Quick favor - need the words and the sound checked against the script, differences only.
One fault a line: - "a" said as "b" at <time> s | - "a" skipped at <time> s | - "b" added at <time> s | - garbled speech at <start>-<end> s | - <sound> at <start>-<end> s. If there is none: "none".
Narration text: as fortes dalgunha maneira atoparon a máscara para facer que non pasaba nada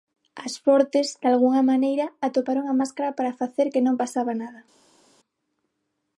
none